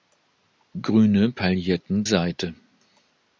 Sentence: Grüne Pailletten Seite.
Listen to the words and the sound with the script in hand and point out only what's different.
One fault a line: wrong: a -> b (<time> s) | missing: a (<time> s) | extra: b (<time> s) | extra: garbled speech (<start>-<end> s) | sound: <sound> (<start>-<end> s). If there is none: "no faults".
no faults